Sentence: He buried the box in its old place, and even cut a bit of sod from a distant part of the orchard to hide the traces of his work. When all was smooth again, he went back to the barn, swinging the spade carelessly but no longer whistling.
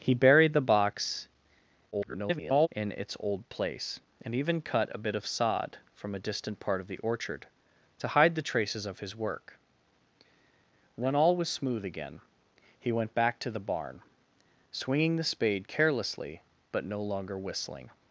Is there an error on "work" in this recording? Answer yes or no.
no